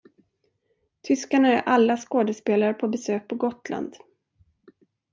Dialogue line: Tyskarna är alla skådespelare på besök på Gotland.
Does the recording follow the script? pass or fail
pass